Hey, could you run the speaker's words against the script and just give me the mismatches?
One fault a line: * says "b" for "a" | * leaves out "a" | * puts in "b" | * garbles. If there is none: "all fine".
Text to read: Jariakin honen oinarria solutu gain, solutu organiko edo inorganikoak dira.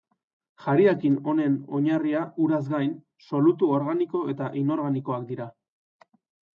* says "uraz" for "solutu"
* says "eta" for "edo"